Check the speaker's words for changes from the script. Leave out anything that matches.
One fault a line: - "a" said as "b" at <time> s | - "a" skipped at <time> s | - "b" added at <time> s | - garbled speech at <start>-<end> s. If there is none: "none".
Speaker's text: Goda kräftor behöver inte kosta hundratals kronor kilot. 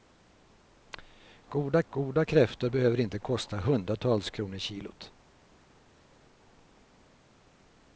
- "goda" added at 1.9 s